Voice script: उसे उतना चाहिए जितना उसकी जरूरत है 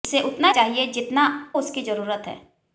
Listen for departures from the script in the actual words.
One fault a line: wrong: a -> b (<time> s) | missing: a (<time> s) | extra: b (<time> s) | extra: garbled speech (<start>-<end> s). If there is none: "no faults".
no faults